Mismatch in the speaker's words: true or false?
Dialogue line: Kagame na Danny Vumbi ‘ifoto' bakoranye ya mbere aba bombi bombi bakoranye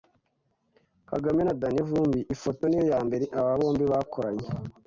true